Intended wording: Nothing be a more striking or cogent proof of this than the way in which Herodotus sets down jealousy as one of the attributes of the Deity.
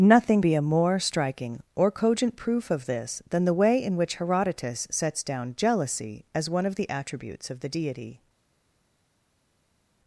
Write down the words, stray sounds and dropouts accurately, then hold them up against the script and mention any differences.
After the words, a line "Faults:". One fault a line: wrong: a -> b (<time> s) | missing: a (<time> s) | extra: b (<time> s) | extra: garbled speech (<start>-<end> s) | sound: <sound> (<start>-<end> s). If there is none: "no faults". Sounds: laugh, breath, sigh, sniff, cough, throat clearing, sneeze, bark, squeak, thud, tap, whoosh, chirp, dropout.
Nothing be a more striking or cogent proof of this than the way in which Herodotus sets down jealousy as one of the attributes of the Deity.
Faults:
no faults